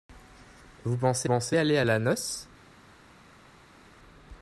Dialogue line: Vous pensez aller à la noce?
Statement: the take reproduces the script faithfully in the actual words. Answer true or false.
false